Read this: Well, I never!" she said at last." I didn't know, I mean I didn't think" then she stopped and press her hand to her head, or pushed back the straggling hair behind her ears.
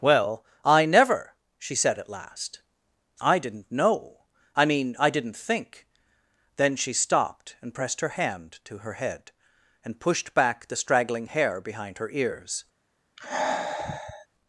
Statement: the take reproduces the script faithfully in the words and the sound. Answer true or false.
false